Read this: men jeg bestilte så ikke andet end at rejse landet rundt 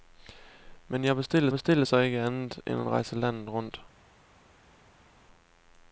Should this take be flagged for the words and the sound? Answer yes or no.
yes